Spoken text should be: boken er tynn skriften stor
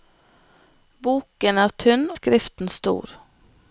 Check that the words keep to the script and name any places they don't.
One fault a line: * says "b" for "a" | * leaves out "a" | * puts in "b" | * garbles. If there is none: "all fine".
all fine